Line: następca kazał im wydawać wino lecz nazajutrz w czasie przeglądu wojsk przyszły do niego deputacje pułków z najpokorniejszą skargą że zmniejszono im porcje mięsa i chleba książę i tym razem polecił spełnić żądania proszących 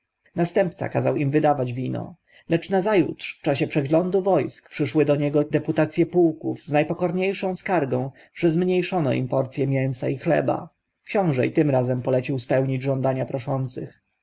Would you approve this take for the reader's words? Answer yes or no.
yes